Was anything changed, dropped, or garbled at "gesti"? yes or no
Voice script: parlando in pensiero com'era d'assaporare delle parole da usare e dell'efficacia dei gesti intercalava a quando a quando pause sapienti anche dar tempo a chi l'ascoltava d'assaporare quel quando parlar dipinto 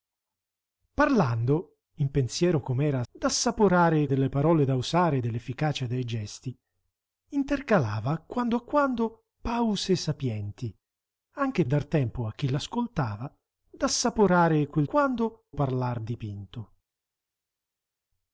no